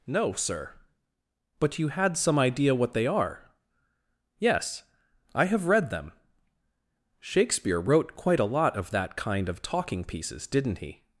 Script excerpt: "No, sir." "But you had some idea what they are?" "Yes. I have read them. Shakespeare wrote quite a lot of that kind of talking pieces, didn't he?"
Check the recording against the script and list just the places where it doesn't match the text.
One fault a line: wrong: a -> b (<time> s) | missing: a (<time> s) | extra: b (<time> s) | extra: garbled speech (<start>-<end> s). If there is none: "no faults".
no faults